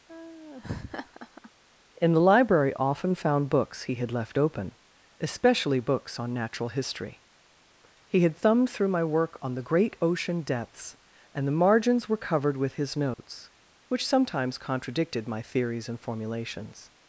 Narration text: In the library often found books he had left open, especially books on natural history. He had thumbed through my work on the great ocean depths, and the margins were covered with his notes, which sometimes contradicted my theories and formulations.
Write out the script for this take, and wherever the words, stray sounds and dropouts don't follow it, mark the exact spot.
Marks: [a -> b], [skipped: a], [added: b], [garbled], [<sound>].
[laugh] In the library often found books he had left open, especially books on natural history. He had thumbed through my work on the great ocean depths, and the margins were covered with his notes, [dropout] which sometimes contradicted my theories and formulations.